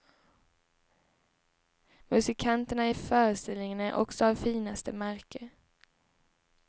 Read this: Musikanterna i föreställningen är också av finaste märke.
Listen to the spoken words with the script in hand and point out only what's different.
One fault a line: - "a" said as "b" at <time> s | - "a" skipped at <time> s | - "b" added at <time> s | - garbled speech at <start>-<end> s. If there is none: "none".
none